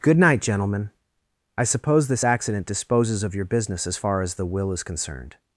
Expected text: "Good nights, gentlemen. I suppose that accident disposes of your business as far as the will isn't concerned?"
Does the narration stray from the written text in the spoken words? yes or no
yes